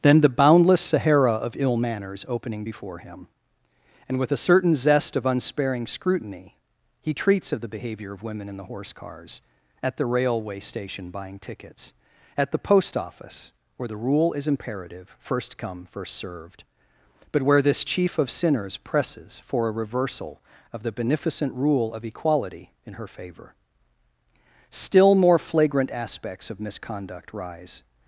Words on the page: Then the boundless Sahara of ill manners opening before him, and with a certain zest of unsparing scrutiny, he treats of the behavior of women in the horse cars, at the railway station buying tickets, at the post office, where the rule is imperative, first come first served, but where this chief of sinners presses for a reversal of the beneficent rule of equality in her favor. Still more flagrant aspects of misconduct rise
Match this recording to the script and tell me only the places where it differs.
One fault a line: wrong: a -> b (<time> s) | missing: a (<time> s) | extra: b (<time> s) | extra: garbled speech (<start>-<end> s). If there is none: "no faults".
no faults